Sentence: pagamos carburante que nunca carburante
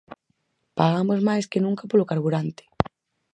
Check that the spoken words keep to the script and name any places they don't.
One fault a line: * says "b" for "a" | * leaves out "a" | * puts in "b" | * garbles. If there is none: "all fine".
* says "máis" for "carburante"
* puts in "polo"